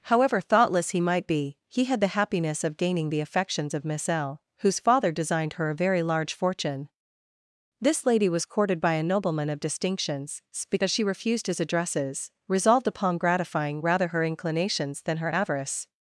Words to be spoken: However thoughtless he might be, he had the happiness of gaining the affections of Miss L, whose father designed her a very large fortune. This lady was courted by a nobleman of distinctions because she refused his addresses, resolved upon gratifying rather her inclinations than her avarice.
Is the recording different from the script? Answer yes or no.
no